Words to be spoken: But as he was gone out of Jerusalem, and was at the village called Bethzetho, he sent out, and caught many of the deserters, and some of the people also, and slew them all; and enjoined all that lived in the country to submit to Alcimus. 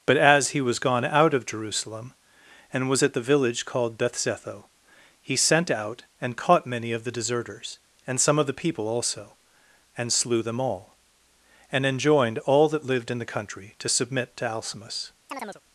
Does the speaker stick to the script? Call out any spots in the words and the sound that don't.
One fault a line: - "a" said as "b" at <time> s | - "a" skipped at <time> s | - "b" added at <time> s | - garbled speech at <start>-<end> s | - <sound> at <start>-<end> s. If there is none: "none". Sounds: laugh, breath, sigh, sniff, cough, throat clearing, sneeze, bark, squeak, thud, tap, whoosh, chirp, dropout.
- chirp at 15.3-15.6 s